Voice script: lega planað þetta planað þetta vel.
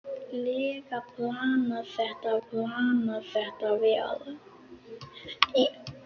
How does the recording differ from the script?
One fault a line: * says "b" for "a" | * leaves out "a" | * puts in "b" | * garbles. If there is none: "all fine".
all fine